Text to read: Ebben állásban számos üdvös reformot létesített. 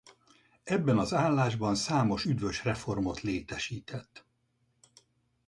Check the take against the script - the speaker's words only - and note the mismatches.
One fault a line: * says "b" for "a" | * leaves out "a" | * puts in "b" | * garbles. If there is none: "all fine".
* puts in "az"